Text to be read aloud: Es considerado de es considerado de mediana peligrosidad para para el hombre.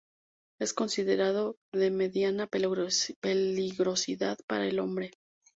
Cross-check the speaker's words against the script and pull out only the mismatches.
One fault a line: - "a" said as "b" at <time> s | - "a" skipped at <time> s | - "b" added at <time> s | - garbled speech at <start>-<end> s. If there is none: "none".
- "es considerado de" skipped at 1.9 s
- "para" skipped at 4.7 s